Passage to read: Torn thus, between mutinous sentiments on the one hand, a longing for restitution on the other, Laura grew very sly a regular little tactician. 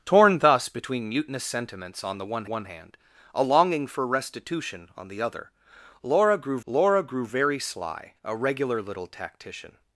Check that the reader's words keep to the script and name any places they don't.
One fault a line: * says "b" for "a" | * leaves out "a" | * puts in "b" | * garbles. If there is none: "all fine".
* puts in "one"
* puts in "Laura grew"